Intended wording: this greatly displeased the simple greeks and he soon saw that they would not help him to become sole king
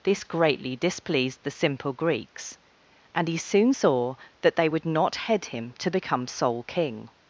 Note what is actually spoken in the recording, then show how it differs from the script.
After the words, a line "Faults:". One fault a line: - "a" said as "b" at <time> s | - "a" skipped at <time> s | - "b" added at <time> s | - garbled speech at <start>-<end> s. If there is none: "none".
this greatly displeased the simple greeks and he soon saw that they would not head him to become sole king
Faults:
- "help" said as "head" at 5.2 s